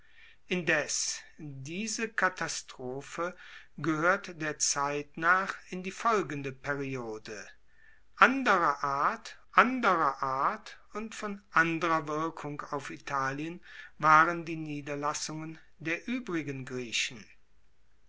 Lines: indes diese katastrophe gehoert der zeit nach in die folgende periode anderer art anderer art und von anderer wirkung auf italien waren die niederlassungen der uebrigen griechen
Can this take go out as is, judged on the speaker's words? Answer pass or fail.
pass